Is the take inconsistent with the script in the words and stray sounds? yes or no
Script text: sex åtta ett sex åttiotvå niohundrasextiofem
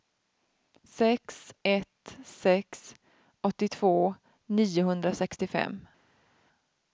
yes